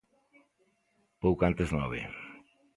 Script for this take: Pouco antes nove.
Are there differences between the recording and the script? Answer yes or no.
no